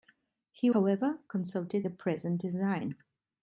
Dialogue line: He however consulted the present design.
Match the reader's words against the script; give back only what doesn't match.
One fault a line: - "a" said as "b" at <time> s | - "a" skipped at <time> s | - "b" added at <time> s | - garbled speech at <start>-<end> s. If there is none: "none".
none